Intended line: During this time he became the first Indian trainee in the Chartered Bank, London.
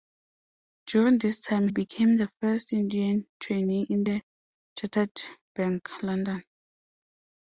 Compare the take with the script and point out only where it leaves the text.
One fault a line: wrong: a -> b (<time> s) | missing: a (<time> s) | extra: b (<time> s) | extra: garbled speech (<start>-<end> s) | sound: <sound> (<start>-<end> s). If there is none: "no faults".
missing: he (1.7 s)